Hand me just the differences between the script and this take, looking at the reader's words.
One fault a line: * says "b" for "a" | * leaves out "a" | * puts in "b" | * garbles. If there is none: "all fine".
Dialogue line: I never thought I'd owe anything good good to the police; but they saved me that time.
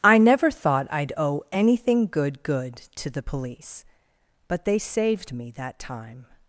all fine